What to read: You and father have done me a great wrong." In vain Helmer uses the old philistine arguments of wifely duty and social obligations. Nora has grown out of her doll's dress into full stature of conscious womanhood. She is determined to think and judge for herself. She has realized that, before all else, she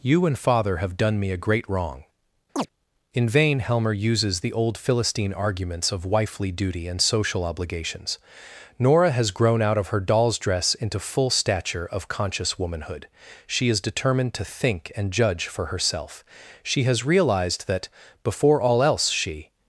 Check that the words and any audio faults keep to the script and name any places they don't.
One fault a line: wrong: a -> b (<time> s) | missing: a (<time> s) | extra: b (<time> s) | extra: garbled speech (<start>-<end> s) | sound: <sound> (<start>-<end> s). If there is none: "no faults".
sound: chirp (2.6-2.7 s)